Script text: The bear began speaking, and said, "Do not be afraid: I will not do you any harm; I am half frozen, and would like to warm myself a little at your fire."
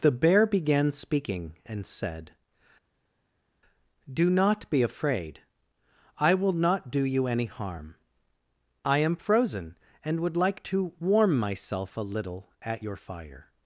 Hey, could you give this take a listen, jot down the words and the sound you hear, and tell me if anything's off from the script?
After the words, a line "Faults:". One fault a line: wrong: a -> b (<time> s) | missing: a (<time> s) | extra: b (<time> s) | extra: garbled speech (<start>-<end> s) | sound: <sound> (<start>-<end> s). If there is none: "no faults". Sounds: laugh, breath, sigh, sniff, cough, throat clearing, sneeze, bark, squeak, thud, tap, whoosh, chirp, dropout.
The bear began speaking, and said, "Do not be afraid: I will not do you any harm; I am frozen, and would like to warm myself a little at your fire."
Faults:
missing: half (9.1 s)